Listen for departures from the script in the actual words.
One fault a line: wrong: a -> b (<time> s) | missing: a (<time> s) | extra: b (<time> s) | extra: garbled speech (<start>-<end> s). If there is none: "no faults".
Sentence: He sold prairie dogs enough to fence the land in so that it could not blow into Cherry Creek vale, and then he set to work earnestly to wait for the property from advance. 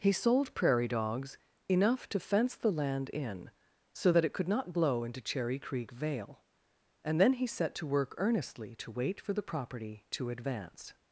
wrong: from -> to (10.1 s)